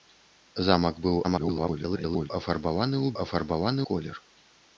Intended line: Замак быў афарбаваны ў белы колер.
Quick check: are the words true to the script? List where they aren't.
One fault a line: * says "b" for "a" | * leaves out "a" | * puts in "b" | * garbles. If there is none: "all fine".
* garbles
* says "афарбаваны" for "белы"